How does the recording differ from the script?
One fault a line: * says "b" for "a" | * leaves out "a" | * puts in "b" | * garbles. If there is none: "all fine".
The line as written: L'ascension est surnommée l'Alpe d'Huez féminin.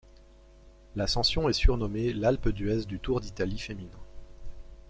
* puts in "du Tour d'Italie"